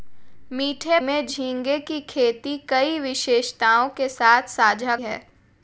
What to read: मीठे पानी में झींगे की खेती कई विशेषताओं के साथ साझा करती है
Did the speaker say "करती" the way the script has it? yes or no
no